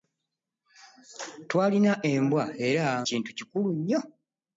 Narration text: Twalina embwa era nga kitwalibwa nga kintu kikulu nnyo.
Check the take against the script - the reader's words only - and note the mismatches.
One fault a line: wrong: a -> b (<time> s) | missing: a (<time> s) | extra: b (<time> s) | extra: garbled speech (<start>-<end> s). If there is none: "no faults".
missing: nga kitwalibwa nga (2.9 s)